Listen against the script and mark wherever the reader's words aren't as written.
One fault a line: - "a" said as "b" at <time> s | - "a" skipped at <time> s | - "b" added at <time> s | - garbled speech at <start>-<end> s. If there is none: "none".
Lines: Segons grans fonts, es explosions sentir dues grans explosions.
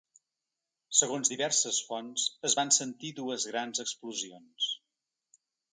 - "grans" said as "diverses" at 1.3 s
- "explosions" said as "van" at 2.6 s